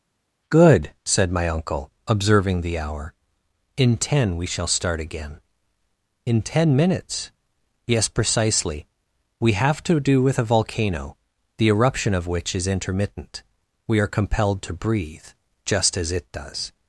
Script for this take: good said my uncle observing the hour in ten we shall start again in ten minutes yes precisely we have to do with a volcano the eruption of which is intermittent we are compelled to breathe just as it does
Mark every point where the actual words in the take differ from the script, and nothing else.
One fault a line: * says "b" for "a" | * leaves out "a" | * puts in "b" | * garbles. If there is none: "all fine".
all fine